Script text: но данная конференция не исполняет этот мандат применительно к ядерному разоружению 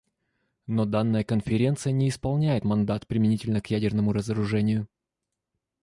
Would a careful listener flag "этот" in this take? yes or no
yes